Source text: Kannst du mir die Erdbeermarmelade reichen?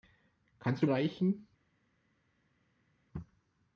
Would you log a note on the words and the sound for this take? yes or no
yes